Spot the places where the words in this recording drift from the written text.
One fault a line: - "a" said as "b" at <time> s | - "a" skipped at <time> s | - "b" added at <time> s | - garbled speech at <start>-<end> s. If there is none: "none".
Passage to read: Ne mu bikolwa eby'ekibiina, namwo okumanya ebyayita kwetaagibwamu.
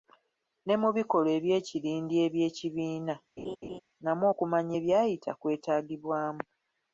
- "eby'ekirindi" added at 1.4 s